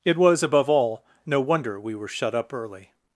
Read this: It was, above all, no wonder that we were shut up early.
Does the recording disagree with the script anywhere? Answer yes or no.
yes